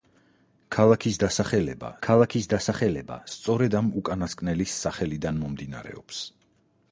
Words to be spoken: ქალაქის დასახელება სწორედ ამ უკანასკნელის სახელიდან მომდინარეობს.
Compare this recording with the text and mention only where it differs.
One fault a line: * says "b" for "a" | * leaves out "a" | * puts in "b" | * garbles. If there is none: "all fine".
* puts in "ქალაქის დასახელება"